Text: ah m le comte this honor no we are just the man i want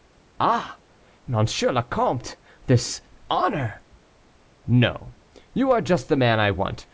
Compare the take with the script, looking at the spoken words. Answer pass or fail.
fail